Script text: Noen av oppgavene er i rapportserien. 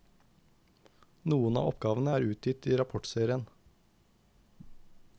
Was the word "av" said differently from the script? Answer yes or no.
no